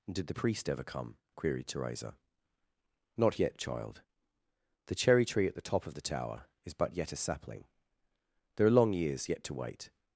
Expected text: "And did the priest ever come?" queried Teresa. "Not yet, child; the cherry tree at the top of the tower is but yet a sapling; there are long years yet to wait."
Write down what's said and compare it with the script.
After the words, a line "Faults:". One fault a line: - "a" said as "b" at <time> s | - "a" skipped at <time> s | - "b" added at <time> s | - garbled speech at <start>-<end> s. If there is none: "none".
did the priest ever come?" queried Teresa. "Not yet, child; the cherry tree at the top of the tower is but yet a sapling; there are long years yet to wait."
Faults:
- "And" skipped at 0.1 s